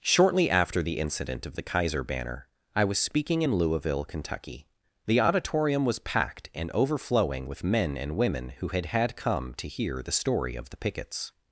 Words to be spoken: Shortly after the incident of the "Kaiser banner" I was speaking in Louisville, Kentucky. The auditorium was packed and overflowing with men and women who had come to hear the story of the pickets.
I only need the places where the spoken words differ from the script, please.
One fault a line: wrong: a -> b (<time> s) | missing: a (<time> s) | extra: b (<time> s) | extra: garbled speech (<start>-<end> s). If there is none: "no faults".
extra: had (8.9 s)